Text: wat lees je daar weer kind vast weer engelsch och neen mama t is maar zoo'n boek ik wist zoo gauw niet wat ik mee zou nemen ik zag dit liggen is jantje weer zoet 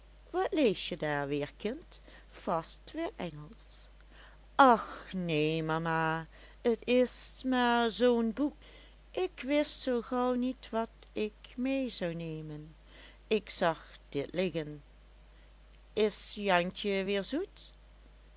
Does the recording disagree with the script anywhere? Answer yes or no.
no